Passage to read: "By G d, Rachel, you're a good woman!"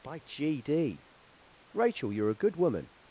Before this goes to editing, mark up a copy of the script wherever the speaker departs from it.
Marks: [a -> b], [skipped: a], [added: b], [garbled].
"By G d, Rachel, you're a good woman!"